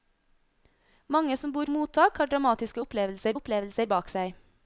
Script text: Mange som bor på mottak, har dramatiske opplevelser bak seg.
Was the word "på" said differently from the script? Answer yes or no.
yes